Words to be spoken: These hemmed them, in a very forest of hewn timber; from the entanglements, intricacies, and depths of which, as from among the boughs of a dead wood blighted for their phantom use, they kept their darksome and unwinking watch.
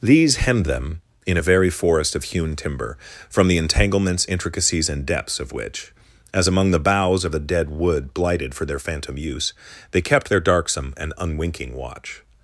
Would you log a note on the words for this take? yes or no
yes